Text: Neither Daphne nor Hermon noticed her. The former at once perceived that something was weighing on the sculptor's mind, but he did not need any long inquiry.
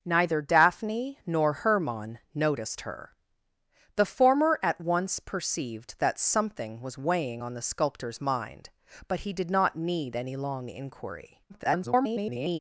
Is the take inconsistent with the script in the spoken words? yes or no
yes